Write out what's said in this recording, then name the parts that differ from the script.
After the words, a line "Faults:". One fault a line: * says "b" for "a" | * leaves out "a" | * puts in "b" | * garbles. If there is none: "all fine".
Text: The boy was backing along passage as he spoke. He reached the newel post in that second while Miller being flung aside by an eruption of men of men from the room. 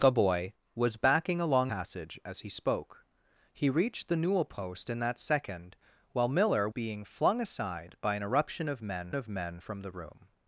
The boy was backing along passage as he spoke. He reached the newel post in that second while Miller being flung aside by an eruption of men of men from the room.
Faults:
all fine